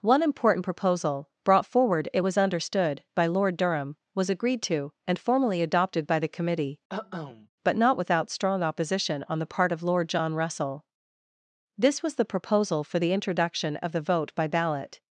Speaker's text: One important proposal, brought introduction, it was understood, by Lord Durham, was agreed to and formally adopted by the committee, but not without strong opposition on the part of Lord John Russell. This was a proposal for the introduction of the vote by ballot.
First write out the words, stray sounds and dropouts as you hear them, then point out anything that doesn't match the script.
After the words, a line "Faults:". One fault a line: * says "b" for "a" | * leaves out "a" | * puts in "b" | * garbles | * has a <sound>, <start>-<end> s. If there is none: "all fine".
One important proposal, brought forward, it was understood, by Lord Durham, was agreed to and formally adopted by the committee, but not without strong opposition on the part of Lord John Russell. This was the proposal for the introduction of the vote by ballot.
Faults:
* says "forward" for "introduction"
* has a cough, 6.9-7.5 s
* says "the" for "a"